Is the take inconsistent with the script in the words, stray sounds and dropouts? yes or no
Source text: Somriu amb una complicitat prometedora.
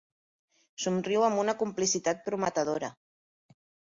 no